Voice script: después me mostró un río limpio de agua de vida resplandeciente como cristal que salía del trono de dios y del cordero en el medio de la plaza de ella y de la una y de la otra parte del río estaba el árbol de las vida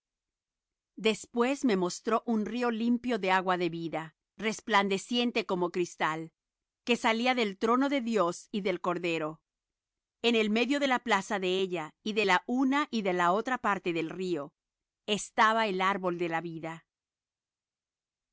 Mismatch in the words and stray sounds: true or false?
true